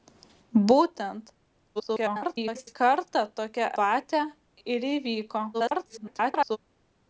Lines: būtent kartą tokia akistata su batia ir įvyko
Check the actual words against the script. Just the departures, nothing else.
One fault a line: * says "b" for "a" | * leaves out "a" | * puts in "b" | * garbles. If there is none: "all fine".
* garbles
* leaves out "akistata su"
* garbles